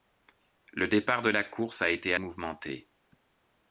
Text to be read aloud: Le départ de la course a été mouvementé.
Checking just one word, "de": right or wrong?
right